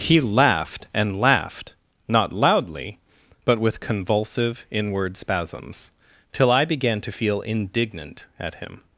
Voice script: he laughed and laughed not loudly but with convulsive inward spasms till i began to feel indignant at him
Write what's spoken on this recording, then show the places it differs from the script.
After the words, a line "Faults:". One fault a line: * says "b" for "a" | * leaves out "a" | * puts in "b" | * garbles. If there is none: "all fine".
he laughed and laughed not loudly but with convulsive inward spasms till i began to feel indignant at him
Faults:
all fine